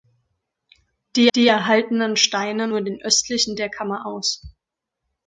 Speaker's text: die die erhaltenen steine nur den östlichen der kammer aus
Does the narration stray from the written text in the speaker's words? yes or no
no